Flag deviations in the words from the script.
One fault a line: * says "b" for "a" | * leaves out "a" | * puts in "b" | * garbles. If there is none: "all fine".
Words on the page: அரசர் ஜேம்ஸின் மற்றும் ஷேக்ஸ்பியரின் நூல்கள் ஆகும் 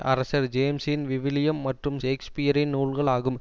* puts in "விவிலியம்"